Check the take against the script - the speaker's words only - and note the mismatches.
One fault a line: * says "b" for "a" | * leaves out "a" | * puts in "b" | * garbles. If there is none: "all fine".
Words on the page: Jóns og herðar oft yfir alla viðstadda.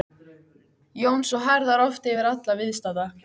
all fine